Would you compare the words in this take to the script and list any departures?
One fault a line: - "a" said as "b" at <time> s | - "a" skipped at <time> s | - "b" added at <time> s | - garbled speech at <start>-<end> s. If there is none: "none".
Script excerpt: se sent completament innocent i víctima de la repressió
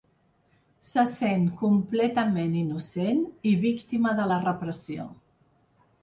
none